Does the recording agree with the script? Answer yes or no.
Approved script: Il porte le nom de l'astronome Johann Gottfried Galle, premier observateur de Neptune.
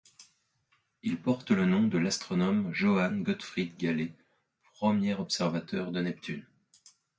yes